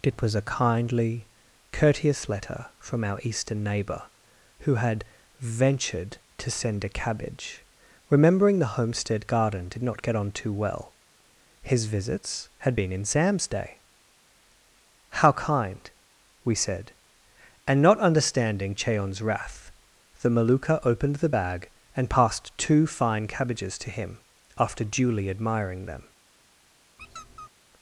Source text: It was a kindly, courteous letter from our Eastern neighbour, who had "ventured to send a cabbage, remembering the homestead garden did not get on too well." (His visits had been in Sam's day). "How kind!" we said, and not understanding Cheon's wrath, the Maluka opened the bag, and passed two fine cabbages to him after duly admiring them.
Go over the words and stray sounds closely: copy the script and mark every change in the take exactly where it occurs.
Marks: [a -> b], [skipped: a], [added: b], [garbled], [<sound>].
It was a kindly, courteous letter from our Eastern neighbour, who had "ventured to send a cabbage, remembering the homestead garden did not get on too well." (His visits had been in Sam's day). "How kind!" we said, and not understanding Cheon's wrath, the Maluka opened the bag, and passed two fine cabbages to him after duly admiring them. [squeak]